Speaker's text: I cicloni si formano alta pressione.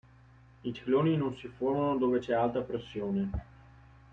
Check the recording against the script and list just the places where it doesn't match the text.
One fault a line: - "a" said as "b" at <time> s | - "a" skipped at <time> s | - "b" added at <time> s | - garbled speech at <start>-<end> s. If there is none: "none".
- "non" added at 1.2 s
- "dove c'è" added at 2.0 s